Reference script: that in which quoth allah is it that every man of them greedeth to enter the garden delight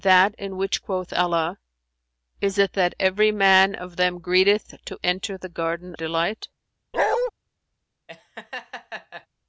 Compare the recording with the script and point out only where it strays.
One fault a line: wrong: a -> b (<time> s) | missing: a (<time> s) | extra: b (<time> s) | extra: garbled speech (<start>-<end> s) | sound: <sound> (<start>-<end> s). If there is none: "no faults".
sound: bark (6.9-7.3 s)
sound: laugh (8.1-9.3 s)